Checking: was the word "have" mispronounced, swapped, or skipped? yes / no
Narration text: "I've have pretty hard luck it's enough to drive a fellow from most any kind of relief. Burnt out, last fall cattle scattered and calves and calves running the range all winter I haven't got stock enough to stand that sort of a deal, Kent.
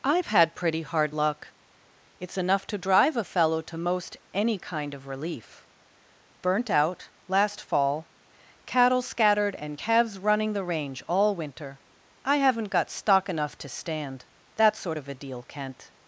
yes